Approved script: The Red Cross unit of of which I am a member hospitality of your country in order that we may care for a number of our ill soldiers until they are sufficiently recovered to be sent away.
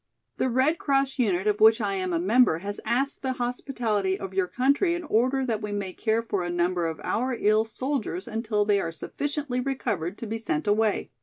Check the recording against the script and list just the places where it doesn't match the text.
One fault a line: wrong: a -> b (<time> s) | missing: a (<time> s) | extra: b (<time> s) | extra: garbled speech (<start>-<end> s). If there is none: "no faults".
missing: of (1.6 s)
extra: has asked the (2.6 s)